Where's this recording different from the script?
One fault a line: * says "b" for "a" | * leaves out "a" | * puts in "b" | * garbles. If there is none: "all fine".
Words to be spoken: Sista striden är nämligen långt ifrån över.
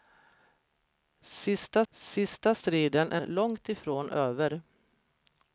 * puts in "sista"
* leaves out "nämligen"